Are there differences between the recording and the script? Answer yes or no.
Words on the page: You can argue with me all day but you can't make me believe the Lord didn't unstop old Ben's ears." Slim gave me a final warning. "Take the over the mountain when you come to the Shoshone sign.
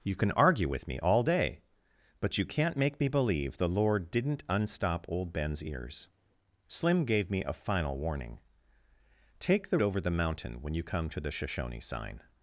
no